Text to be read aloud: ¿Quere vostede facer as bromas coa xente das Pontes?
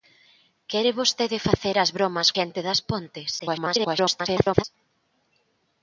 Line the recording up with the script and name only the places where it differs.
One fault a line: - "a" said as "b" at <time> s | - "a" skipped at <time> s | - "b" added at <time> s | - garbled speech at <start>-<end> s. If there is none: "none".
- "coa" skipped at 2.3 s
- garbled speech at 3.4-4.6 s